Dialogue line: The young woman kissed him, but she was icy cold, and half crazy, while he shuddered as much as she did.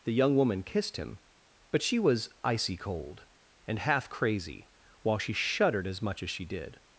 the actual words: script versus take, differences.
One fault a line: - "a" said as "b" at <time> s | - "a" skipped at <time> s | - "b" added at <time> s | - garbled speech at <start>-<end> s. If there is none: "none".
- "he" said as "she" at 5.2 s